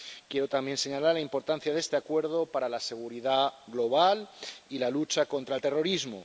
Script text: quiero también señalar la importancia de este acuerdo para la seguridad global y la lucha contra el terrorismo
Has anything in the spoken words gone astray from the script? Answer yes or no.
no